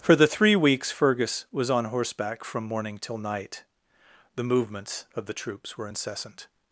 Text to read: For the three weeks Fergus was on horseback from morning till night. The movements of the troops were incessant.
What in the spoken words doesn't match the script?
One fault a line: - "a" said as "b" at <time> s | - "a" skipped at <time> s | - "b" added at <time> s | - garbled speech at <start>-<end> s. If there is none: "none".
none